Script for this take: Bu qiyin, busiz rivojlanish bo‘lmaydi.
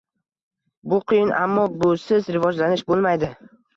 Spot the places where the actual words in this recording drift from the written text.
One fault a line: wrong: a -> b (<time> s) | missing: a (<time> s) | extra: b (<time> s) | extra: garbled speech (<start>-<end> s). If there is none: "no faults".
extra: ammo (1.4 s)